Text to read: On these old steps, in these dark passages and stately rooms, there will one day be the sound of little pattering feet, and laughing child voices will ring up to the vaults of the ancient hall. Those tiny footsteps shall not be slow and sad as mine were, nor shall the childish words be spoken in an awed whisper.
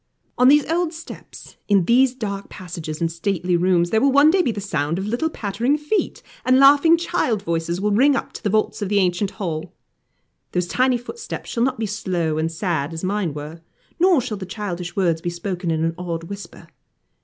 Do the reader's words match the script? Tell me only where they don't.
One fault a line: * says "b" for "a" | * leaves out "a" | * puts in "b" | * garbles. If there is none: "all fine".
all fine